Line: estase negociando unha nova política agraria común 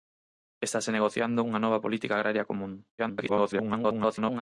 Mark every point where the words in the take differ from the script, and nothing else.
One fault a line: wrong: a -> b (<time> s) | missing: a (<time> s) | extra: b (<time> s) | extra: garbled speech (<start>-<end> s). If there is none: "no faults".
extra: garbled speech (3.0-4.4 s)